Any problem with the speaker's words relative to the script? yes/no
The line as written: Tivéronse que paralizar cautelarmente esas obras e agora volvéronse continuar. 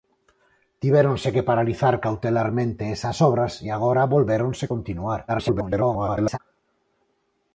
yes